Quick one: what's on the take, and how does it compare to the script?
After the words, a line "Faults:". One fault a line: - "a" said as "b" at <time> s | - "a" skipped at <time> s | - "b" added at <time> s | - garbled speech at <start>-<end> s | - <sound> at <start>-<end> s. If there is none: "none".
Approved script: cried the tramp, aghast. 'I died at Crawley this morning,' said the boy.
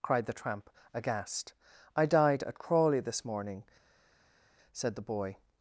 cried the tramp, aghast. 'I died at Crawley this morning,' said the boy.
Faults:
none